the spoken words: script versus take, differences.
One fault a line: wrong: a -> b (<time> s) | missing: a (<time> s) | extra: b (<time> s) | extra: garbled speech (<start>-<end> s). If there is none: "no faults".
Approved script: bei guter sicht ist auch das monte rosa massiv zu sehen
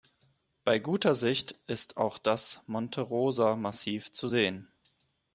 no faults